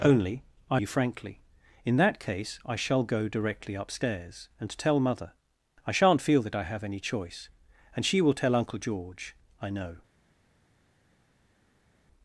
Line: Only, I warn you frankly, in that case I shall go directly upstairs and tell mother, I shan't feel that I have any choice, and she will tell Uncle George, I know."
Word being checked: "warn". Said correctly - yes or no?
no